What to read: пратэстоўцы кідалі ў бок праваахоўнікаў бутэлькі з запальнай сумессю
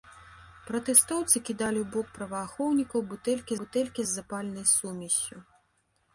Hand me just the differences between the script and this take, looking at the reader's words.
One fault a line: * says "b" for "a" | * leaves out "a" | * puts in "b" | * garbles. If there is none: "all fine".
* puts in "бутэлькі"